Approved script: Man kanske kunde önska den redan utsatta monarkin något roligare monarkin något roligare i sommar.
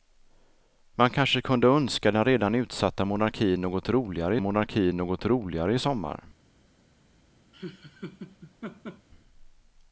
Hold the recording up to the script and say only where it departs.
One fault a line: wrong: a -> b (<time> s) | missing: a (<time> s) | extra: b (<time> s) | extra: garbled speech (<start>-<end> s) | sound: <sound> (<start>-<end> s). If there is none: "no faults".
sound: laugh (7.5-9.1 s)